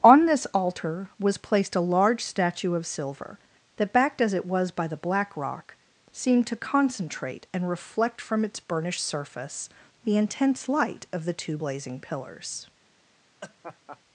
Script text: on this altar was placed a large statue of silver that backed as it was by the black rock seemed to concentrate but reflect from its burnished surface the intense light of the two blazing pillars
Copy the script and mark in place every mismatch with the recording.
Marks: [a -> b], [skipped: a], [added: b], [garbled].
on this altar was placed a large statue of silver that backed as it was by the black rock seemed to concentrate [but -> and] reflect from its burnished surface the intense light of the two blazing pillars